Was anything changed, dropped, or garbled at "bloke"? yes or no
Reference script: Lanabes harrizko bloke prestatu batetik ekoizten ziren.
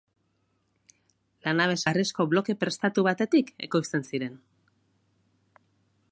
no